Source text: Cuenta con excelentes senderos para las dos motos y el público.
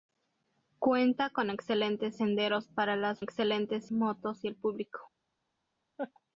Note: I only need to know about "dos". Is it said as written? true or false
false